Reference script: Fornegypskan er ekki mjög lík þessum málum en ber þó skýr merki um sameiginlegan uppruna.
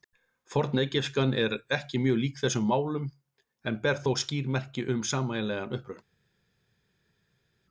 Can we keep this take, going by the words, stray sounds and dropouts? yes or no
yes